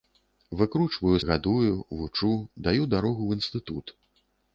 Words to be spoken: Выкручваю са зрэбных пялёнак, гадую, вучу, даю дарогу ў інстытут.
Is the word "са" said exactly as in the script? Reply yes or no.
no